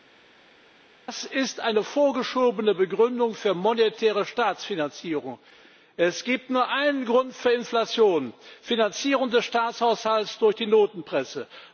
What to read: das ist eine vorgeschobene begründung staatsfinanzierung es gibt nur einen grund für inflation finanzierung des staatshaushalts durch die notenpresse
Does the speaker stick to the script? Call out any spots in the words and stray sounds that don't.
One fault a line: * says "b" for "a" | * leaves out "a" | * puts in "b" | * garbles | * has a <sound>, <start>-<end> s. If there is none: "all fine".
* puts in "für monetäre"